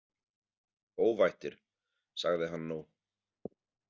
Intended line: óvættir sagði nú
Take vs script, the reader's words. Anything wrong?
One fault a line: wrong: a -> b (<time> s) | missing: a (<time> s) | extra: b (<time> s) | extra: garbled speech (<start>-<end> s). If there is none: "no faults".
extra: hann (2.5 s)